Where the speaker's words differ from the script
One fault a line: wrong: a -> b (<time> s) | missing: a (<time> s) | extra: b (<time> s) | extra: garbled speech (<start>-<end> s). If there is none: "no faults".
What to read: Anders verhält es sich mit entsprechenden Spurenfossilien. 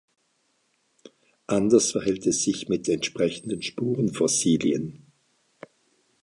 no faults